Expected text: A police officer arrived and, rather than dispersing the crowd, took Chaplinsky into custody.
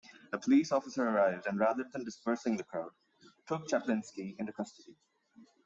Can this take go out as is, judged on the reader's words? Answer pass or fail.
pass